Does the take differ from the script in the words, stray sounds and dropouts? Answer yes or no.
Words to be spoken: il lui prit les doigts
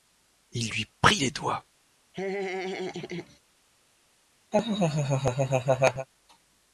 yes